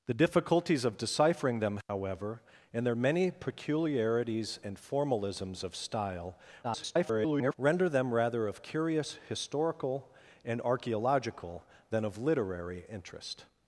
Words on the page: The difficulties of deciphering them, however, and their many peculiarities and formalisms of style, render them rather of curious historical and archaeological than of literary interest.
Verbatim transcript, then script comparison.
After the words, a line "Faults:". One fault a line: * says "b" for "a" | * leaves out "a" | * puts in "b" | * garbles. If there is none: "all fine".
The difficulties of deciphering them, however, and their many peculiarities and formalisms of style, [garbled] render them rather of curious historical and archaeological than of literary interest.
Faults:
* garbles